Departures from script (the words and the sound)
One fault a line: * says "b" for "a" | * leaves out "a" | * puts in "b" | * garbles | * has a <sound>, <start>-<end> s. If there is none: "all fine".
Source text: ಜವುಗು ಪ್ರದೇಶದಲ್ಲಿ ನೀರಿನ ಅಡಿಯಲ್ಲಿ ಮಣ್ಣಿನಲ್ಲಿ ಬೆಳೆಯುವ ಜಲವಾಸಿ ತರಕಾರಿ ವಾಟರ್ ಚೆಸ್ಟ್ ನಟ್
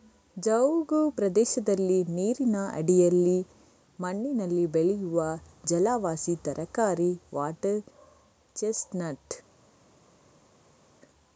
all fine